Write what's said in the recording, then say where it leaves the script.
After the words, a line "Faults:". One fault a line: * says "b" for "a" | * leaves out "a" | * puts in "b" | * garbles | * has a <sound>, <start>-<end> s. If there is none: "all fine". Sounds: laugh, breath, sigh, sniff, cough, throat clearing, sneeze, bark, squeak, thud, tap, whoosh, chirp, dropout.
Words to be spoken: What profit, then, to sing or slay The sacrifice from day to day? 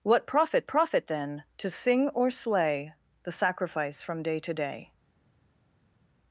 What profit profit, then, to sing or slay The sacrifice from day to day?
Faults:
* puts in "profit"